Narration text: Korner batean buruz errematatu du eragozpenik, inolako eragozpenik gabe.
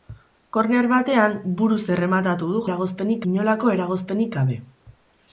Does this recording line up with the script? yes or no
yes